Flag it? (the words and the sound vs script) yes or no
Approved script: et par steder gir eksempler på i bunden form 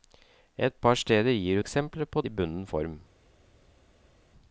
no